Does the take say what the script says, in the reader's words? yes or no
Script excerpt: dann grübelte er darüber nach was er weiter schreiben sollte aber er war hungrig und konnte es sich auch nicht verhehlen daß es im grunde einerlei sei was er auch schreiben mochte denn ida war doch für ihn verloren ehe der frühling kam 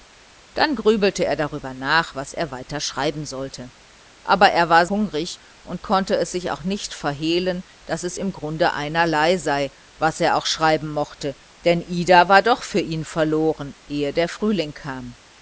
yes